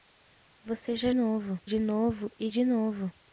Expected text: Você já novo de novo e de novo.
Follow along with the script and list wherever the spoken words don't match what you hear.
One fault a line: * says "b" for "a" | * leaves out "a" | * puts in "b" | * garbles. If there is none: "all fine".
all fine